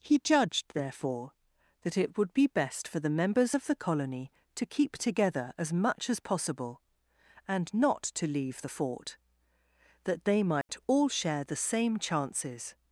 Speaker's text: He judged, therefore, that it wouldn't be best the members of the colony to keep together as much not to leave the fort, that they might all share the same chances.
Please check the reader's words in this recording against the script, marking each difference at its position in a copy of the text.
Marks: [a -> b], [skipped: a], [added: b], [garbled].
He judged, therefore, that it [wouldn't -> would] be best [added: for] the members of the colony to keep together as much [added: as possible and] not to leave the fort, that they might all share the same chances.